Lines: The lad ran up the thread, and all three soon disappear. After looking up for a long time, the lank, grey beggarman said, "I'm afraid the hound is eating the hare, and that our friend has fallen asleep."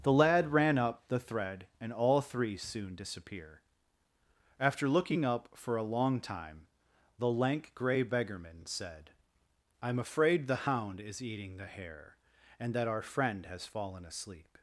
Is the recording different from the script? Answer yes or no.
no